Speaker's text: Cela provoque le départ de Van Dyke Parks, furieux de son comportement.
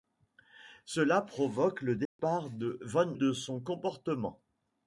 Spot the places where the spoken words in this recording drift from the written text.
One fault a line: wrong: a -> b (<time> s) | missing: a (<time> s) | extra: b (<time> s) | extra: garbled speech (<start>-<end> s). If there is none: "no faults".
missing: Dyke Parks furieux (3.2 s)